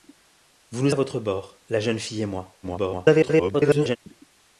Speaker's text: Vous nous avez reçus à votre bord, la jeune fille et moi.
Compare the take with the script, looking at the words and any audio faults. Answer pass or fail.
fail